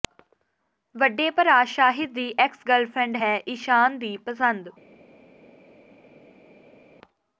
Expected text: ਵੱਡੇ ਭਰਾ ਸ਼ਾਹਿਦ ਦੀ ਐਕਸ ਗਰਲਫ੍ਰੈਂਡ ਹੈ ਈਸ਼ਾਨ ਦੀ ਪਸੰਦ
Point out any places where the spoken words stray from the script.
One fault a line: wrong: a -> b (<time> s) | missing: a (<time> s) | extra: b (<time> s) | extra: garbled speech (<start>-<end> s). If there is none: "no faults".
no faults